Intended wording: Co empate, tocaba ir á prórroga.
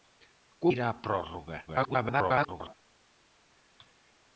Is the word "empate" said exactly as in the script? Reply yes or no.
no